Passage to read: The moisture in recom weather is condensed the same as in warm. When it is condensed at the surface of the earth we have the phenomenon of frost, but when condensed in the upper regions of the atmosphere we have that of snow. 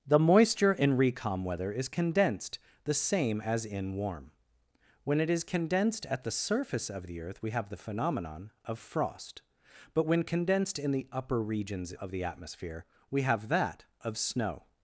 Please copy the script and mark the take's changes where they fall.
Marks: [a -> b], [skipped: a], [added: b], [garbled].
The moisture in recom weather is condensed the same as in warm. When it is condensed at the surface of the earth we have the phenomenon of frost, but when condensed in the upper regions of the atmosphere we have that of snow.